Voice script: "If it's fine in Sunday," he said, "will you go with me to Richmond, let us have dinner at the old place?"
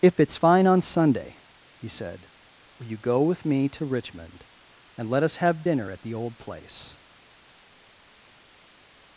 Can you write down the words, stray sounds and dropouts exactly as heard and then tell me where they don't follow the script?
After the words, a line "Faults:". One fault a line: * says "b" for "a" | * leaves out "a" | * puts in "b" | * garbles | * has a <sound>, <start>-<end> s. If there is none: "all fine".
"If it's fine on Sunday," he said, "will you go with me to Richmond, and let us have dinner at the old place?"
Faults:
* says "on" for "in"
* puts in "and"